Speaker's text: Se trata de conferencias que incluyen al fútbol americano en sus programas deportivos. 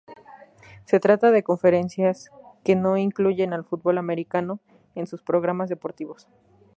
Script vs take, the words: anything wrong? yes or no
yes